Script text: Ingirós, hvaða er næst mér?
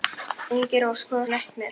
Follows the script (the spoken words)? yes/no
yes